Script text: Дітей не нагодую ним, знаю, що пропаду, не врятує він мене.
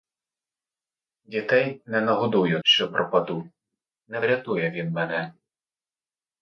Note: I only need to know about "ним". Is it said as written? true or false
false